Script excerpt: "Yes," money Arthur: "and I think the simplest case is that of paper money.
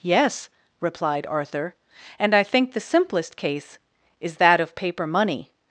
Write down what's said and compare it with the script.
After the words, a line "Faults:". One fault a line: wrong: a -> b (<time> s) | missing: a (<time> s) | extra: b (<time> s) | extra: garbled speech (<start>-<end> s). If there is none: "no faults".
"Yes," replied Arthur: "and I think the simplest case is that of paper money.
Faults:
wrong: money -> replied (0.8 s)